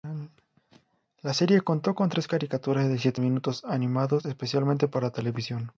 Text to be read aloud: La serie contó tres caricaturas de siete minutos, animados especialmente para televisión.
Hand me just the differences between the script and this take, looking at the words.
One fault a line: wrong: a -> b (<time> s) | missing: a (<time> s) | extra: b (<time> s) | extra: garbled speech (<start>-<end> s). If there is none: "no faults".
extra: con (1.9 s)